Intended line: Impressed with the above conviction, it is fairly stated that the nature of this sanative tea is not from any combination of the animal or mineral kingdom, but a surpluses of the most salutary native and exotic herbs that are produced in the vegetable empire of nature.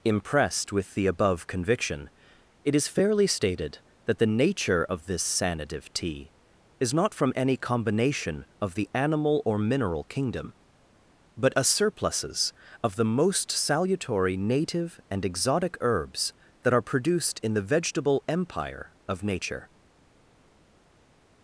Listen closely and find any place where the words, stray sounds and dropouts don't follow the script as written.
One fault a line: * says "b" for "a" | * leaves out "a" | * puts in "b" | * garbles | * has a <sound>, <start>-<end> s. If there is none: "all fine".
all fine